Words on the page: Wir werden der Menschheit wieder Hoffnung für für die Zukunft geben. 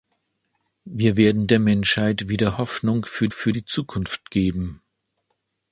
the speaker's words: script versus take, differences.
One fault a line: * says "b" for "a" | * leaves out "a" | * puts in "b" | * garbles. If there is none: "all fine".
all fine